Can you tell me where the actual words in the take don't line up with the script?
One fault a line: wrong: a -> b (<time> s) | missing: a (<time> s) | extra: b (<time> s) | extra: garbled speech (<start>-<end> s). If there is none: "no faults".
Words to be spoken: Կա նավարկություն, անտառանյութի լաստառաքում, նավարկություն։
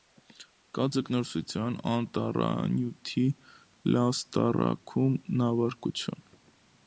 wrong: նավարկություն -> ձկնորսություն (1.0 s)